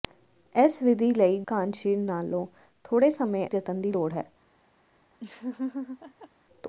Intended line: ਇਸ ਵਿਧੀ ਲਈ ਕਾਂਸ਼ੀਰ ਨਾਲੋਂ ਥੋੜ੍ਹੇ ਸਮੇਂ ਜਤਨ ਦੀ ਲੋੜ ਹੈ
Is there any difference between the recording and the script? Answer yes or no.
no